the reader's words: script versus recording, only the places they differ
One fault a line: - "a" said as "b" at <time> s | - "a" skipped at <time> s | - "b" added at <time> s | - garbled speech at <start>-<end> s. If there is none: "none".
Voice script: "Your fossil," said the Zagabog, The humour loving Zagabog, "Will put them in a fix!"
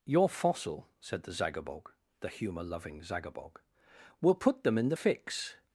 - "a" said as "the" at 4.9 s